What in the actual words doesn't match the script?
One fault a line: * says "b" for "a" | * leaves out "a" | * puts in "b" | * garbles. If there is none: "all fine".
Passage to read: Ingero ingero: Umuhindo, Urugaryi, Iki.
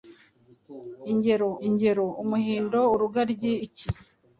all fine